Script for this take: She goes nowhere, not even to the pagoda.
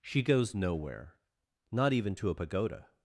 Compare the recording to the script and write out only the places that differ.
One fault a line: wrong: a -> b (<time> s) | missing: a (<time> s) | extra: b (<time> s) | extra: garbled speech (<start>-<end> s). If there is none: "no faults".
wrong: the -> a (2.3 s)